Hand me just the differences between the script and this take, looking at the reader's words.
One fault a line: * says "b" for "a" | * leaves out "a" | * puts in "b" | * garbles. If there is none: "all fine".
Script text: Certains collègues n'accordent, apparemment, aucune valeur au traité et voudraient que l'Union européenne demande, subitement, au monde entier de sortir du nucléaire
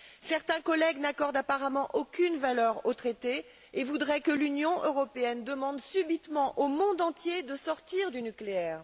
all fine